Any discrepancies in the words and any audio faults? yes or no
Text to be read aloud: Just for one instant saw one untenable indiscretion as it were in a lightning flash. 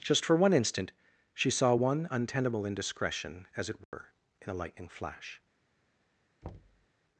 yes